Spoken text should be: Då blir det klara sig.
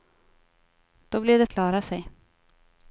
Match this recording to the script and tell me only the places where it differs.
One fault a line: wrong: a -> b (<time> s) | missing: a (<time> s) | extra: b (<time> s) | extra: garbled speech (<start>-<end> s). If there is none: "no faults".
no faults